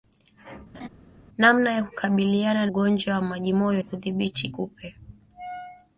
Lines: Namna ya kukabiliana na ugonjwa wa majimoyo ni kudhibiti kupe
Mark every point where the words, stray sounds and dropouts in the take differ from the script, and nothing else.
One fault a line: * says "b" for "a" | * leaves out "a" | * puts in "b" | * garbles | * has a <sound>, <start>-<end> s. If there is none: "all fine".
* has a laugh, 0.7-0.9 s
* leaves out "na"
* leaves out "ni"